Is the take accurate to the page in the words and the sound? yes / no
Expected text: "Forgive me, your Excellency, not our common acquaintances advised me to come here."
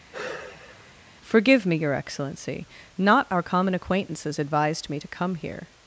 no